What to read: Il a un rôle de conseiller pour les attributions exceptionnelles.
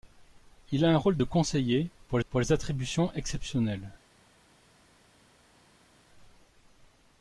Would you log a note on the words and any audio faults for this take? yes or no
yes